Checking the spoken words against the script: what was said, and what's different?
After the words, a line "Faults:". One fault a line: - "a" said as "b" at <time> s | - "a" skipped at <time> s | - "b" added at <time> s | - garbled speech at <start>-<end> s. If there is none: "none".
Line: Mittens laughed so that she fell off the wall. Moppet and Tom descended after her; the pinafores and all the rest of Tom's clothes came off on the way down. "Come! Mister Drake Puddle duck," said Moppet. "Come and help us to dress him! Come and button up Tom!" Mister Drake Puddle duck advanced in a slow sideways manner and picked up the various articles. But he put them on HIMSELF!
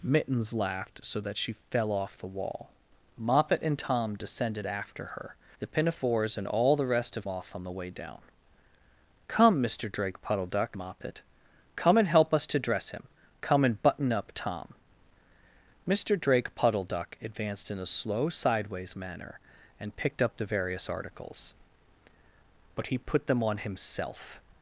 Mittens laughed so that she fell off the wall. Moppet and Tom descended after her; the pinafores and all the rest of Off on the way down. "Come! Mister Drake Puddle duck," Moppet. "Come and help us to dress him! Come and button up Tom!" Mister Drake Puddle duck advanced in a slow sideways manner and picked up the various articles. But he put them on HIMSELF!
Faults:
- "Tom's clothes came" skipped at 7.3 s
- "said" skipped at 10.8 s